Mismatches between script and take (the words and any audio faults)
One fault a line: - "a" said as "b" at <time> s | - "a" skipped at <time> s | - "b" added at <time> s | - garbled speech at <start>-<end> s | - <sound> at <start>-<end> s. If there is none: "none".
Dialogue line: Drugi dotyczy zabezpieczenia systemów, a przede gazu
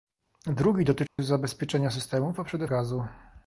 - dropout at 1.1-1.2 s